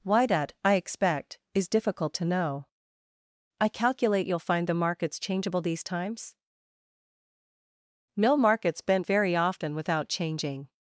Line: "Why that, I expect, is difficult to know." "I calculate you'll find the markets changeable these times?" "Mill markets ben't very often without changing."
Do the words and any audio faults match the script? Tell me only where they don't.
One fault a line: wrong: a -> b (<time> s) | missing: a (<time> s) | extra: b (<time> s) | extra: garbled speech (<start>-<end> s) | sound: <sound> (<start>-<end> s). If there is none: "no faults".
no faults